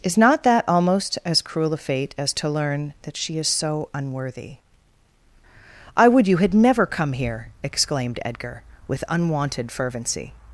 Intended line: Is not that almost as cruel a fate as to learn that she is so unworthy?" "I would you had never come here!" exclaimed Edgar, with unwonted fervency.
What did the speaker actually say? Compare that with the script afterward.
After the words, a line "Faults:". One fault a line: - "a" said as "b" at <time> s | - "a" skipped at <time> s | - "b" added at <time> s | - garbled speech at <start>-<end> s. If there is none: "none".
Is not that almost as cruel a fate as to learn that she is so unworthy?" "I would you had never come here!" exclaimed Edgar, with unwonted fervency.
Faults:
none